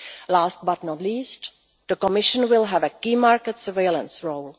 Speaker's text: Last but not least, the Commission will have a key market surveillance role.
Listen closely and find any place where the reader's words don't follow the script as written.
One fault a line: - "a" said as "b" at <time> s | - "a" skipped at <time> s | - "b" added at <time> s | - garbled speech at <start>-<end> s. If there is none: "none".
none